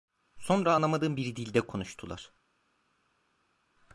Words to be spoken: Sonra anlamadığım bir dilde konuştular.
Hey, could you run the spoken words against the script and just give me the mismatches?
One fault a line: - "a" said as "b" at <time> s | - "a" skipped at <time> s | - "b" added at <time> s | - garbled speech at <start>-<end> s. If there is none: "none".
none